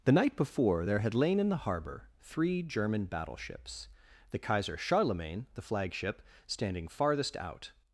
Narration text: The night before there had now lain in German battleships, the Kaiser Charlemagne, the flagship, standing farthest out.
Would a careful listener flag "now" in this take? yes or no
yes